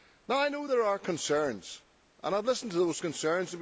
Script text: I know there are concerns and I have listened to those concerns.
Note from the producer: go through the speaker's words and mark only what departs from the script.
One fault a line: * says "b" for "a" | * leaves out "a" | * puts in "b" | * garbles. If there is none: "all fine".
all fine